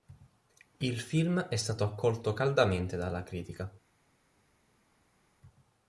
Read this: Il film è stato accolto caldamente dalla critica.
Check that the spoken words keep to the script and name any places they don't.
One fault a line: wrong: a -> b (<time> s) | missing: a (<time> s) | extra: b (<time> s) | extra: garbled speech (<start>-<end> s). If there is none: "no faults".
no faults